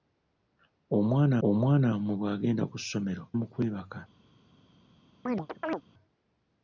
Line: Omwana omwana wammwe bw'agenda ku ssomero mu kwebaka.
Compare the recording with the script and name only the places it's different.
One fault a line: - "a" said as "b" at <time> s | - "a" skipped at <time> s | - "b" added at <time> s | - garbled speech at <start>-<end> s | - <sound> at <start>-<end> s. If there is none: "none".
- chirp at 5.3-5.8 s